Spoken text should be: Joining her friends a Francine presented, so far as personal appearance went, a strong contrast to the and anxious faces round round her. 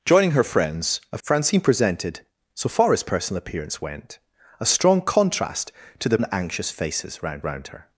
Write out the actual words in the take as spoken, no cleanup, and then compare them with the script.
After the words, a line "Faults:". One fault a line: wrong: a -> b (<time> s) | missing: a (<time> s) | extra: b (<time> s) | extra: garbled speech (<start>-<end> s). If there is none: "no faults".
Joining her friends a Francine presented, so far as personal appearance went, a strong contrast to the and anxious faces round round her.
Faults:
no faults